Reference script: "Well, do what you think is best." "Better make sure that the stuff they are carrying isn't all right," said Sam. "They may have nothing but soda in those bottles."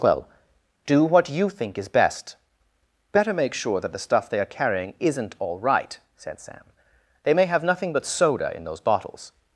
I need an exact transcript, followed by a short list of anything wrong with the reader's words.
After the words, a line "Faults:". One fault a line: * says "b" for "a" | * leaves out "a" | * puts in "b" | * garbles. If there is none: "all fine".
"Well, do what you think is best." "Better make sure that the stuff they are carrying isn't all right," said Sam. "They may have nothing but soda in those bottles."
Faults:
all fine